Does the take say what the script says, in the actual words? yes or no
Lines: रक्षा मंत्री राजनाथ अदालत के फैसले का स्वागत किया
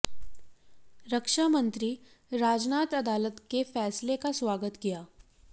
yes